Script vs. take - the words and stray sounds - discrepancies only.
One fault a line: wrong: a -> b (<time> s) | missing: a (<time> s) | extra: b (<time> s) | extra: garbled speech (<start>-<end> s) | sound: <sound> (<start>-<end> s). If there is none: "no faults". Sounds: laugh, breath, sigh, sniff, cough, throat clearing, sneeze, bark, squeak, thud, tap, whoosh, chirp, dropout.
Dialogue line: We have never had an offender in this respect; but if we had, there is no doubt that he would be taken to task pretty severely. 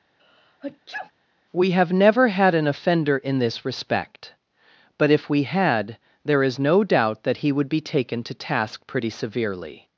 sound: sneeze (0.2-1.1 s)